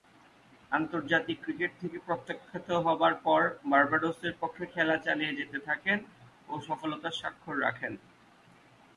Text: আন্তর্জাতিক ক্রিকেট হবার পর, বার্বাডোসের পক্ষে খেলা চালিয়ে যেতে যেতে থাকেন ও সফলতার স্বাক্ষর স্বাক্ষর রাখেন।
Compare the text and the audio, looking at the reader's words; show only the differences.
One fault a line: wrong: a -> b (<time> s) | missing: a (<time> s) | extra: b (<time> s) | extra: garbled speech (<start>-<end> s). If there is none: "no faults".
extra: থেকে প্রত্যাখ্যাত (1.8 s)
missing: যেতে (5.6 s)
missing: স্বাক্ষর (7.5 s)